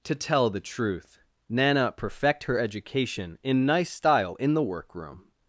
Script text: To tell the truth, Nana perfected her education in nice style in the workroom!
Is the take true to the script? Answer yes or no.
no